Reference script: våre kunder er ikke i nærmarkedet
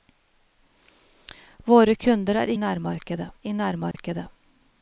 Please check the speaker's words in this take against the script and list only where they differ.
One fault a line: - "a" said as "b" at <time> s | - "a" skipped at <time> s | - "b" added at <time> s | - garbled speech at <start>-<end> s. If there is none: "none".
- "ikke" said as "nærmarkedet" at 2.6 s